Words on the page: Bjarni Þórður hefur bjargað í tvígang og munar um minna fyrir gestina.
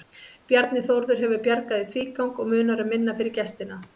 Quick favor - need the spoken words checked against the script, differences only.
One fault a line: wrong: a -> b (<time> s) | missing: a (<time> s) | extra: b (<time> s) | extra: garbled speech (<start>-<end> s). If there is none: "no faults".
no faults